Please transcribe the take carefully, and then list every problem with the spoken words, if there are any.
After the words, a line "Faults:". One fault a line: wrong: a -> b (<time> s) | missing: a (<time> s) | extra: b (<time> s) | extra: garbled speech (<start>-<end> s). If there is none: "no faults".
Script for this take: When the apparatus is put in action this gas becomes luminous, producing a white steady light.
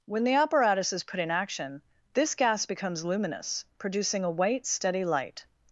When the apparatus is put in action this gas becomes luminous, producing a white steady light.
Faults:
no faults